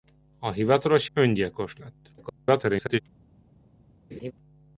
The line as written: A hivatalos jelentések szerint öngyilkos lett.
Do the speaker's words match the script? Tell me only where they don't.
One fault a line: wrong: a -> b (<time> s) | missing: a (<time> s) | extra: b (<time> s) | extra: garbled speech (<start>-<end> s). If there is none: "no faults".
missing: jelentések szerint (1.1 s)
extra: garbled speech (2.2-3.0 s)